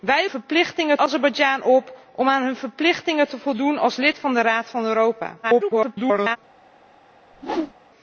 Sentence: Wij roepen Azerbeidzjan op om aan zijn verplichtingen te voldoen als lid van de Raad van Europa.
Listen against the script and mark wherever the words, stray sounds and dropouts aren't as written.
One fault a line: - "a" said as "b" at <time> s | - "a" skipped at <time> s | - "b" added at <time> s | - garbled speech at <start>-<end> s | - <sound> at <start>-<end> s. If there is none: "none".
- "roepen" said as "verplichtingen" at 0.3 s
- garbled speech at 5.4-6.4 s
- whoosh at 7.3-7.7 s